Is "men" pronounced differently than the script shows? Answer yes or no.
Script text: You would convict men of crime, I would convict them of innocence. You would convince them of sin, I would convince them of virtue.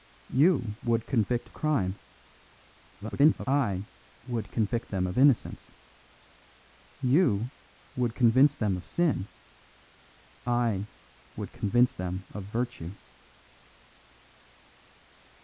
yes